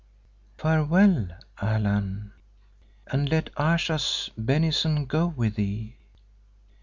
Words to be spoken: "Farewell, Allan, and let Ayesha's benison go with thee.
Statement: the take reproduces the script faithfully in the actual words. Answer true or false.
true